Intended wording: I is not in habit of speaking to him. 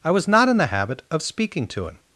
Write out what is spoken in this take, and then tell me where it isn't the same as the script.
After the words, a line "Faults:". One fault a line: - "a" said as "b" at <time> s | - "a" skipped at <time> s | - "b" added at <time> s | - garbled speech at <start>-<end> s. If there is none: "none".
I was not in the habit of speaking to him.
Faults:
- "is" said as "was" at 0.1 s
- "the" added at 0.6 s